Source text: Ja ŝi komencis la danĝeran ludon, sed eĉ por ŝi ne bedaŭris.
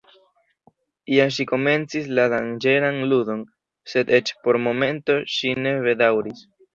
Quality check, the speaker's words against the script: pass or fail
fail